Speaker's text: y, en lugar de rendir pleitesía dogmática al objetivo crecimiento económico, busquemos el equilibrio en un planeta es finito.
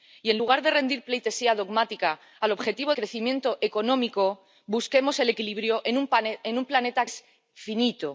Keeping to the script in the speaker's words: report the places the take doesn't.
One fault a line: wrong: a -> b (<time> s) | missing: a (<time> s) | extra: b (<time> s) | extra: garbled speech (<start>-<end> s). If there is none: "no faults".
no faults